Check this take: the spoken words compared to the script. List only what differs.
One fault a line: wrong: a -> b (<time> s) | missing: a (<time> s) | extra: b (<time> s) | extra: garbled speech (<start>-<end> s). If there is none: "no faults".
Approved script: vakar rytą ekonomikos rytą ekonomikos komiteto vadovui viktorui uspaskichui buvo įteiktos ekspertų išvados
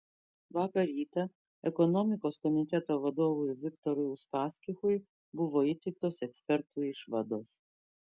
missing: rytą ekonomikos (2.4 s)